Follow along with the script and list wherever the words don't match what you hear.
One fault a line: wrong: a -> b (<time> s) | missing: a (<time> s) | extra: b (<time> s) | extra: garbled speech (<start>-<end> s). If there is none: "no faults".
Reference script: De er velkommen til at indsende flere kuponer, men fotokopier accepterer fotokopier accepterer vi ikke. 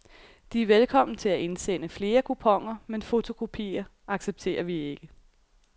missing: fotokopier accepterer (4.6 s)